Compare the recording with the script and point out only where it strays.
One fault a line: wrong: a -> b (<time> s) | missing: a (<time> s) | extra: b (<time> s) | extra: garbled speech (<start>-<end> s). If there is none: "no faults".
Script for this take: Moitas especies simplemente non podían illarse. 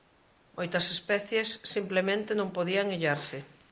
no faults